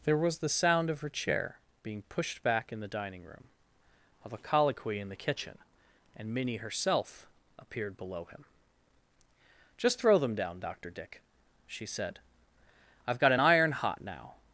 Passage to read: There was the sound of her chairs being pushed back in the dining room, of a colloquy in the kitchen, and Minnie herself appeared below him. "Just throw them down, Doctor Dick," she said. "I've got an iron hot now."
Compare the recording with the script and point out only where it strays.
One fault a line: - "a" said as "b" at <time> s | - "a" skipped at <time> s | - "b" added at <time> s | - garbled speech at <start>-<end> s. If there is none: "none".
- "chairs" said as "chair" at 1.1 s